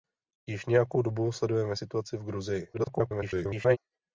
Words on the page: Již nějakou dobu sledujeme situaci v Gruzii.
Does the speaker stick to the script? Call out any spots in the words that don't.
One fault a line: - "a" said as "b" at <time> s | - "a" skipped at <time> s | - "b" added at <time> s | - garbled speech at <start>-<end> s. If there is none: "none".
- garbled speech at 2.7-3.8 s